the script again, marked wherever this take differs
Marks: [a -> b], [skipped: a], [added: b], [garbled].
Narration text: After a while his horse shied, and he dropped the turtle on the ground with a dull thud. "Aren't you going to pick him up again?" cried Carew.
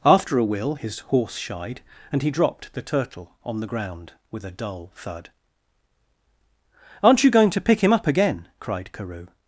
After a [while -> will] his horse shied, and he dropped the turtle on the ground with a dull thud. "Aren't you going to pick him up again?" cried Carew.